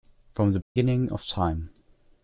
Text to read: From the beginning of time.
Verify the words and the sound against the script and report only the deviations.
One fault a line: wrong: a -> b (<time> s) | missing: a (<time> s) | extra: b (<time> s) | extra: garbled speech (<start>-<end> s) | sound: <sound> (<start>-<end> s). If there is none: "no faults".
sound: dropout (0.6-0.8 s)